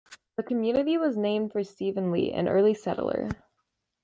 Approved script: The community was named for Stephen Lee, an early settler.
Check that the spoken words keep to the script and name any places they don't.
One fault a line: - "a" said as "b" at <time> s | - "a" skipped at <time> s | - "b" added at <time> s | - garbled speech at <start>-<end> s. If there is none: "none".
none